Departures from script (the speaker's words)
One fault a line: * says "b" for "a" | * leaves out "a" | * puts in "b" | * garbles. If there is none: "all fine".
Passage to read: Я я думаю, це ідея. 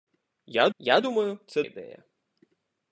all fine